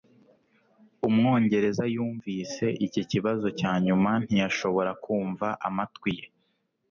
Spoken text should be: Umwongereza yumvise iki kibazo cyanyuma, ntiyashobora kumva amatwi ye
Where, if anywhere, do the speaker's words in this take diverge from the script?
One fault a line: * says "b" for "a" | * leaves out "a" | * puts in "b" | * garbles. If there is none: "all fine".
all fine